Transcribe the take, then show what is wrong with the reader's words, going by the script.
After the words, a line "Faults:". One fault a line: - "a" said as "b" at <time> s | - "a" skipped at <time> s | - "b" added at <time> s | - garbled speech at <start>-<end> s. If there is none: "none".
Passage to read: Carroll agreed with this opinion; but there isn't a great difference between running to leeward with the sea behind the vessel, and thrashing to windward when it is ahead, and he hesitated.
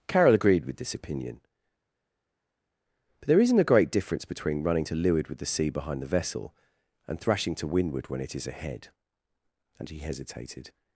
Carroll agreed with this opinion; but there isn't a great difference between running to leeward with the sea behind the vessel, and thrashing to windward when it is ahead, and he hesitated.
Faults:
none